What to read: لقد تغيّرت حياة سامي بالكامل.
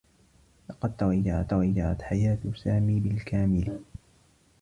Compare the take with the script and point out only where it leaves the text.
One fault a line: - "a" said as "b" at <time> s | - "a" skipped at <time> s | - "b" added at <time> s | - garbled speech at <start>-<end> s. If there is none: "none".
- "تغيّرت" added at 1.5 s